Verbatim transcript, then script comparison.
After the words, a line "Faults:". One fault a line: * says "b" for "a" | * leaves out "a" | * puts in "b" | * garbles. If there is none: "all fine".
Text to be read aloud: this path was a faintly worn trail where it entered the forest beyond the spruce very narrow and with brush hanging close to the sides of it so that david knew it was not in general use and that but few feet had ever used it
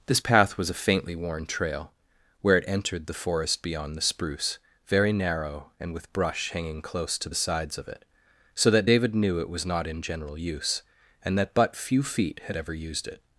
this path was a faintly worn trail where it entered the forest beyond the spruce very narrow and with brush hanging close to the sides of it so that david knew it was not in general use and that but few feet had ever used it
Faults:
all fine